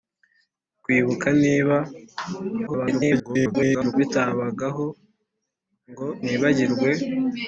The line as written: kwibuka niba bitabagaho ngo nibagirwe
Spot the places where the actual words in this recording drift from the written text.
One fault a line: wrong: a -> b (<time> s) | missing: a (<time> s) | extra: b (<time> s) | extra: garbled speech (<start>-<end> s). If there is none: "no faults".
extra: garbled speech (2.7-3.9 s)